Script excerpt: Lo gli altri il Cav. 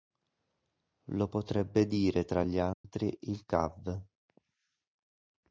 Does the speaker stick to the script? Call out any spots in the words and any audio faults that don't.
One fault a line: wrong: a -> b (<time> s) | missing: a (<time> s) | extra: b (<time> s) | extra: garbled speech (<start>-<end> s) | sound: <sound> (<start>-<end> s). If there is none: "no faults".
extra: potrebbe dire tra (1.3 s)
sound: dropout (2.7-2.8 s)